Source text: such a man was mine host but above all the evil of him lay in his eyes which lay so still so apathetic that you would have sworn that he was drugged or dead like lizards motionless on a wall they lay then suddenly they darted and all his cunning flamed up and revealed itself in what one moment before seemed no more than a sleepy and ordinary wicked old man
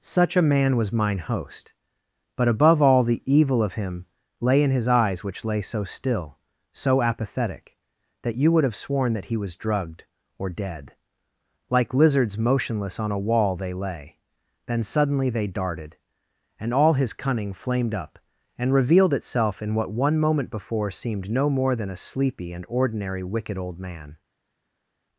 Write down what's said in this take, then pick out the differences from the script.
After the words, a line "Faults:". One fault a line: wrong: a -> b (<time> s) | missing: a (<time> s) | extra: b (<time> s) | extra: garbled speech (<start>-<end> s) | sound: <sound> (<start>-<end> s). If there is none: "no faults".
such a man was mine host but above all the evil of him lay in his eyes which lay so still so apathetic that you would have sworn that he was drugged or dead like lizards motionless on a wall they lay then suddenly they darted and all his cunning flamed up and revealed itself in what one moment before seemed no more than a sleepy and ordinary wicked old man
Faults:
no faults